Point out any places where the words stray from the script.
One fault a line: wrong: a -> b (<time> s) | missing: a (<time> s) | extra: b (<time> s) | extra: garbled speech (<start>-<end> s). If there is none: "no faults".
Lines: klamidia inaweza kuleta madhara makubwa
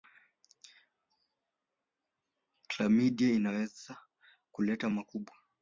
missing: madhara (4.9 s)